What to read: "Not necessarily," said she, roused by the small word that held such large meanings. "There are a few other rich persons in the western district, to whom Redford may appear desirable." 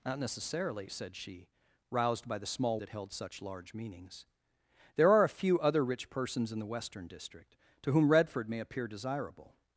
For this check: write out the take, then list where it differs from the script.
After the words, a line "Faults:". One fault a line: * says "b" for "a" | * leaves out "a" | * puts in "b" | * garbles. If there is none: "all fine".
"Not necessarily," said she, roused by the small that held such large meanings. "There are a few other rich persons in the western district, to whom Redford may appear desirable."
Faults:
* leaves out "word"